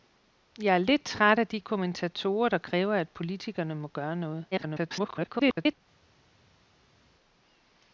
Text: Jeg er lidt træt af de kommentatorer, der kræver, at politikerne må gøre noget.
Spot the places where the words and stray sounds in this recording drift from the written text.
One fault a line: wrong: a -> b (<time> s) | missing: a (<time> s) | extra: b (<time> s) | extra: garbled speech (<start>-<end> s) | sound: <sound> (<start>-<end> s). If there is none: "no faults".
extra: garbled speech (4.5-5.8 s)